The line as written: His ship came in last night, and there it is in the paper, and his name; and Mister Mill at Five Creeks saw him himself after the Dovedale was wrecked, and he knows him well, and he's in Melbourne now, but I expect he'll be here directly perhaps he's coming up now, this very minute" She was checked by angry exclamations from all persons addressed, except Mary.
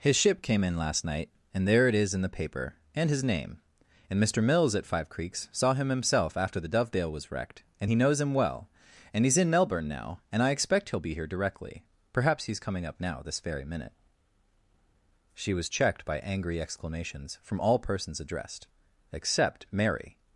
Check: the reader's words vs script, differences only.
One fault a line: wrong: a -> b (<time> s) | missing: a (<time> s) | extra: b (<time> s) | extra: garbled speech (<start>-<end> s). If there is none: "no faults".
wrong: Mill -> Mills (4.4 s)
wrong: but -> and (10.3 s)